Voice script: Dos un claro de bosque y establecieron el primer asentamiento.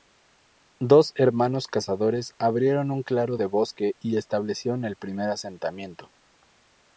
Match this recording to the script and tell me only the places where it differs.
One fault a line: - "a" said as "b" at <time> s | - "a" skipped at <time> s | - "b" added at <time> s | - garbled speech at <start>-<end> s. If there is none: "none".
- "hermanos cazadores abrieron" added at 1.1 s